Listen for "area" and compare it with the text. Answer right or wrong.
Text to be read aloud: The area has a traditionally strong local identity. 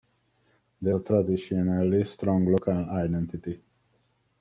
wrong